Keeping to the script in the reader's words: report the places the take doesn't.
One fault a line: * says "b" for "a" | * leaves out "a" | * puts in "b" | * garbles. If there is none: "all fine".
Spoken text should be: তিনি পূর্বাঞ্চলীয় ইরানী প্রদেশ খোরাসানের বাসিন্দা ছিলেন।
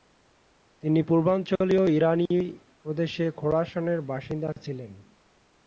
all fine